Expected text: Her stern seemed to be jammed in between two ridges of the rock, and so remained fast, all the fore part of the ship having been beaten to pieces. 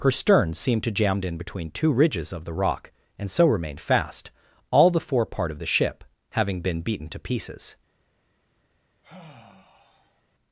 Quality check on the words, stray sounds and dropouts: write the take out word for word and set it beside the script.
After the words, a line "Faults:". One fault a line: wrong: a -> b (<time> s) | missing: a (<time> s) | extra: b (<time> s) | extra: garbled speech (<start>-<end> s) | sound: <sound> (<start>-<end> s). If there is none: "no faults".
Her stern seemed to jammed in between two ridges of the rock, and so remained fast, all the fore part of the ship having been beaten to pieces.
Faults:
missing: be (0.9 s)
sound: sigh (9.0-10.2 s)